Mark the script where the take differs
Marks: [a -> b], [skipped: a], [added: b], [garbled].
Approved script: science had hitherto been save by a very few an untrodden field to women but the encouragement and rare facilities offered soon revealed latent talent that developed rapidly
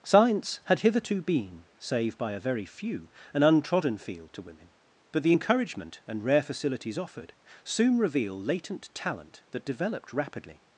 science had hitherto been save by a very few an untrodden field to women but the encouragement and rare facilities offered soon [revealed -> reveal] latent talent that developed rapidly